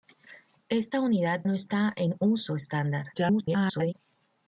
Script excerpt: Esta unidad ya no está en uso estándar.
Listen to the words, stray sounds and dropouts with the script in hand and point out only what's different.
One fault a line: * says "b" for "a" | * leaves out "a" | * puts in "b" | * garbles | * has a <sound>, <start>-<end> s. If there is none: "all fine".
* leaves out "ya"
* garbles